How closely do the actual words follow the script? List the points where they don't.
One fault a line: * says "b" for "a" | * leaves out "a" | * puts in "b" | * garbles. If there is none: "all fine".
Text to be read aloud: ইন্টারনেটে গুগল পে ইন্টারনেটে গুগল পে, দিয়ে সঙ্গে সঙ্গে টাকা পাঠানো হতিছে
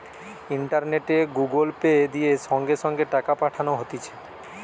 * leaves out "ইন্টারনেটে গুগল পে"